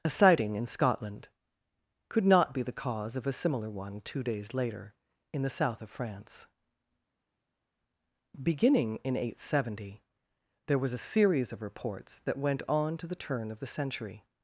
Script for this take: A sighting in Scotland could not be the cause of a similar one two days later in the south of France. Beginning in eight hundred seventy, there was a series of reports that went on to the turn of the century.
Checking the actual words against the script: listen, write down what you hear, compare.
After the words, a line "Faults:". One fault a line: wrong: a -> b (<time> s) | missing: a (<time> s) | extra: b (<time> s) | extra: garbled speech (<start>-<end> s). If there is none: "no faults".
A sighting in Scotland could not be the cause of a similar one two days later in the south of France. Beginning in eight hundred seventy, there was a series of reports that went on to the turn of the century.
Faults:
no faults